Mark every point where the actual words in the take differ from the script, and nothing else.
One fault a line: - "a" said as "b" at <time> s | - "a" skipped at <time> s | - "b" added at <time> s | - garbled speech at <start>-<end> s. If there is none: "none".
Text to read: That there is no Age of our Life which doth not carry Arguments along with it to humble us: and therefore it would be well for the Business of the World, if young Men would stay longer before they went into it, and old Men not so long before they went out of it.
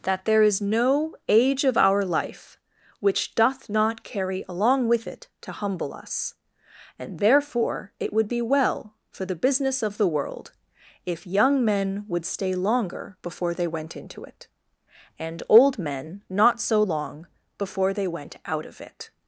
- "Arguments" skipped at 4.5 s